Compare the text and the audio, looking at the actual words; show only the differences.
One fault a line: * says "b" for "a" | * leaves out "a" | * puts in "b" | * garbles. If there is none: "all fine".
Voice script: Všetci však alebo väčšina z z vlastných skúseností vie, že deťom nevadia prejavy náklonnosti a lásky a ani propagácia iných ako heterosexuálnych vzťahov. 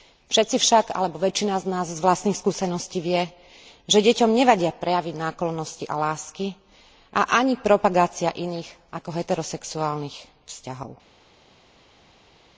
* puts in "nás"